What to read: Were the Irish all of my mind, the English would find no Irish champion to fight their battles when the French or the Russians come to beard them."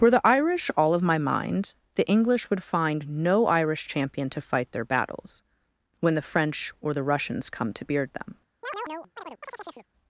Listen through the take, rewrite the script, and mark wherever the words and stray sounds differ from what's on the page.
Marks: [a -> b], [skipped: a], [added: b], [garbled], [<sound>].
Were the Irish all of my mind, the English would find no Irish champion to fight their battles when the French or the Russians come to beard them." [chirp]